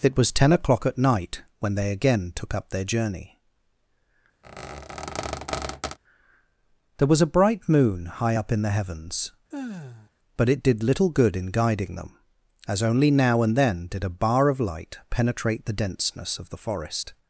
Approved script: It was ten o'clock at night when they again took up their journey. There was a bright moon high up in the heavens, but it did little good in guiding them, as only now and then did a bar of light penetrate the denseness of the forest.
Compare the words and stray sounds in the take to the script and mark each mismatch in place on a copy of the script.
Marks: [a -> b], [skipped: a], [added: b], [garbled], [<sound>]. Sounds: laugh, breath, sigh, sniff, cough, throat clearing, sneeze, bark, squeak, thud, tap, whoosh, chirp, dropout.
It was ten o'clock at night when they again took up their journey. [squeak] There was a bright moon high up in the heavens, [sigh] but it did little good in guiding them, as only now and then did a bar of light penetrate the denseness of the forest.